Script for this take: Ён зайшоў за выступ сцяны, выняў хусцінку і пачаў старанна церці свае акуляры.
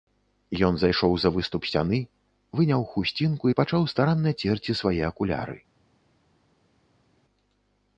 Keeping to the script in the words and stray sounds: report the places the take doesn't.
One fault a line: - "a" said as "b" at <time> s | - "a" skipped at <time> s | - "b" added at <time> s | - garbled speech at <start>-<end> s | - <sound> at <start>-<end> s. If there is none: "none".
none